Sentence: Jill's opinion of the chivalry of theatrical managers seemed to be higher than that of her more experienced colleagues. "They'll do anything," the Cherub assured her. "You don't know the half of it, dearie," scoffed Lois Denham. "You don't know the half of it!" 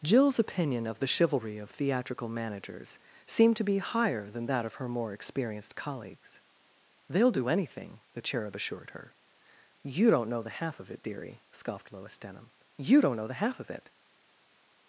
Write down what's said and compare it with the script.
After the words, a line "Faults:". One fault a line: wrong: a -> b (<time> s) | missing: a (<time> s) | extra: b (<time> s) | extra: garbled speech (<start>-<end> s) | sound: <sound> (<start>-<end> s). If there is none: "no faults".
Jill's opinion of the chivalry of theatrical managers seemed to be higher than that of her more experienced colleagues. "They'll do anything," the Cherub assured her. "You don't know the half of it, dearie," scoffed Lois Denham. "You don't know the half of it!"
Faults:
no faults